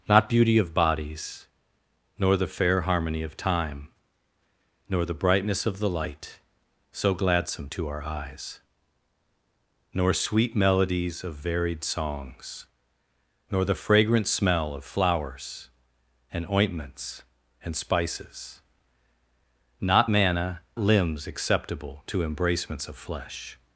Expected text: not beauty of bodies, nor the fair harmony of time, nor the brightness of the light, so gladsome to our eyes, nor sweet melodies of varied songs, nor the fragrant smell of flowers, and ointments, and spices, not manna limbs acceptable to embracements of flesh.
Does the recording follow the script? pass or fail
pass